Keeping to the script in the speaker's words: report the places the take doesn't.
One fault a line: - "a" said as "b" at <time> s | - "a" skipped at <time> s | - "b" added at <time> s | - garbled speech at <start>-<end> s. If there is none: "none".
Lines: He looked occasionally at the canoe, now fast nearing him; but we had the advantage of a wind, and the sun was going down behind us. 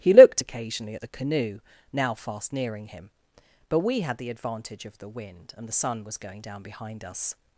- "a" said as "the" at 5.0 s